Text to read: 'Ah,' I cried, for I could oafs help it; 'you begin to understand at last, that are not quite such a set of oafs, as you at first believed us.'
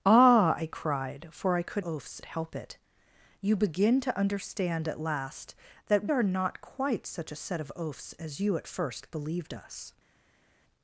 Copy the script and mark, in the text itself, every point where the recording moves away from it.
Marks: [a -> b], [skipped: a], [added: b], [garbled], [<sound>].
'Ah,' I cried, for I could oafs help it; 'you begin to understand at last, that are not quite such a set of oafs, as you at first believed us.'